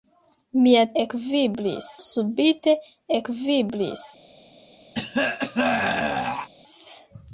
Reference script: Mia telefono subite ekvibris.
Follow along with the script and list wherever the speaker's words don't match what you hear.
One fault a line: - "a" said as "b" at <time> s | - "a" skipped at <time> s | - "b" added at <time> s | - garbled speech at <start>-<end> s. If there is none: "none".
- "telefono" said as "ekvibris" at 1.0 s